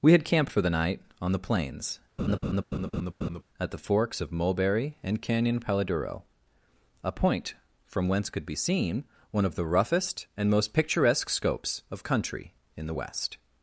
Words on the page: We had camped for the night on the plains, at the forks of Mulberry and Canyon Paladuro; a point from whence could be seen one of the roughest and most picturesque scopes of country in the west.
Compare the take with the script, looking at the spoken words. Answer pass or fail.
pass